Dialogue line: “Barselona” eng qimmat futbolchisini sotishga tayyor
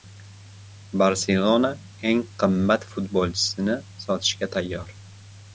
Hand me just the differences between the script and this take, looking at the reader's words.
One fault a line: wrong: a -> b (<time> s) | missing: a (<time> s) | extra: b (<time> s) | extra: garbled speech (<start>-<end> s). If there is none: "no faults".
no faults